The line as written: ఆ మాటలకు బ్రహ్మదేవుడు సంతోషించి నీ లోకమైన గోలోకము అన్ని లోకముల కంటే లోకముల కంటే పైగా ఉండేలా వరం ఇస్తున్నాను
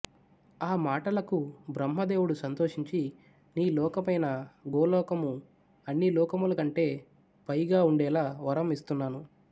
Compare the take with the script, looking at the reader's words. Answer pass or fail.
fail